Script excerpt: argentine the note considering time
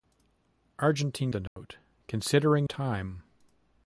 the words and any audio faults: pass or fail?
fail